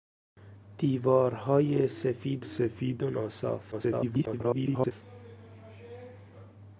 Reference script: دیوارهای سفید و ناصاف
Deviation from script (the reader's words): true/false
true